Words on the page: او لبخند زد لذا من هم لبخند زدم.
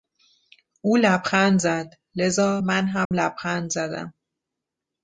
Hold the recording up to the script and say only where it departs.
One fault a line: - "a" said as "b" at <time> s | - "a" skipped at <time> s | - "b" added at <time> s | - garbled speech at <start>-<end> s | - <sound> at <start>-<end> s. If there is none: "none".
- dropout at 3.0-3.1 s